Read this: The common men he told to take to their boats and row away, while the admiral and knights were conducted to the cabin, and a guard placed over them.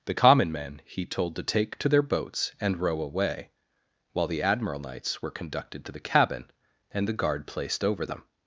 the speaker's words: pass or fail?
fail